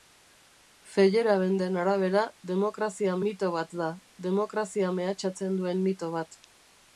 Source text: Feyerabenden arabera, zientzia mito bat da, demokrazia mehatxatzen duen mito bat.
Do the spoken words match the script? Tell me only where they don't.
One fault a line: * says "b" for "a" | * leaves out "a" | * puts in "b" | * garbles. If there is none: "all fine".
* says "demokrazia" for "zientzia"